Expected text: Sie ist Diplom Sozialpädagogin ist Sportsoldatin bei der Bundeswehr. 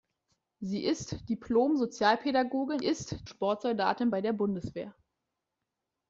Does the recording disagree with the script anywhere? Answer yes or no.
no